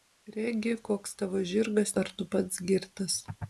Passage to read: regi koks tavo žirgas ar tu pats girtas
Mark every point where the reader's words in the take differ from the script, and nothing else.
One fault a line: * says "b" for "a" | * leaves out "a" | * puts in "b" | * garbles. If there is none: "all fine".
all fine